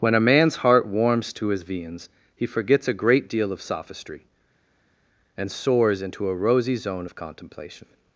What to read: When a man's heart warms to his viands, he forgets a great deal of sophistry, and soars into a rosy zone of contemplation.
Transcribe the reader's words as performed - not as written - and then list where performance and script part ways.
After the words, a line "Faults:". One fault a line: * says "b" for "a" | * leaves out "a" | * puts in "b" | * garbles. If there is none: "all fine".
When a man's heart warms to his viands, he forgets a great deal of sophistry, and soars into a rosy zone of contemplation.
Faults:
all fine